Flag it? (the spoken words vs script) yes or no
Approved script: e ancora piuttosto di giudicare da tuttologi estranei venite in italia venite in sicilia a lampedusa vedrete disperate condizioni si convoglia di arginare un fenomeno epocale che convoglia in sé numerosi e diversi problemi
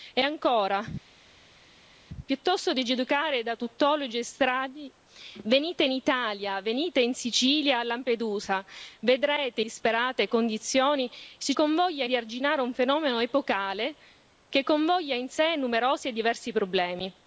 no